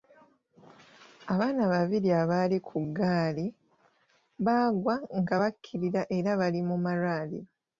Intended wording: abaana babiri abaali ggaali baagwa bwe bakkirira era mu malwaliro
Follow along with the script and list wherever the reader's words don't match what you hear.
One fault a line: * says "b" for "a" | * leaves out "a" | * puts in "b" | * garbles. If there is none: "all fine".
* puts in "ku"
* says "nga" for "bwe"
* puts in "bali"